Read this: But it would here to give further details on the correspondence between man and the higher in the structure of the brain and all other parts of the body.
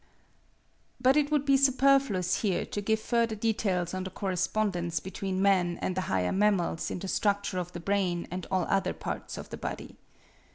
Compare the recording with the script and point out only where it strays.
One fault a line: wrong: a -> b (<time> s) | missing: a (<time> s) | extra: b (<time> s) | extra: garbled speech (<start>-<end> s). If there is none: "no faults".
extra: be superfluous (1.4 s)
extra: mammals (6.3 s)